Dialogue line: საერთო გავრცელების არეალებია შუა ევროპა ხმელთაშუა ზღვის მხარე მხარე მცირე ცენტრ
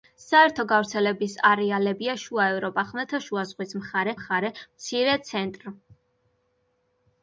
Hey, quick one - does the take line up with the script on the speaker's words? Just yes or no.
yes